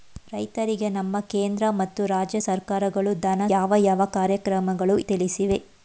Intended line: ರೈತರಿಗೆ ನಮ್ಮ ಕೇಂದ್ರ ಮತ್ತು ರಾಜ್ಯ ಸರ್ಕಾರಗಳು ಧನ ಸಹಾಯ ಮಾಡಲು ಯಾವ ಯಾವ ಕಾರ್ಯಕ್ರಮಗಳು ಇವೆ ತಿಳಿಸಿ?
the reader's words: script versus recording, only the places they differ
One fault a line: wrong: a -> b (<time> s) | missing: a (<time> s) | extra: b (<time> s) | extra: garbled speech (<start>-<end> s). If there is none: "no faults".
missing: ಸಹಾಯ ಮಾಡಲು (3.4 s)
missing: ಇವೆ (5.0 s)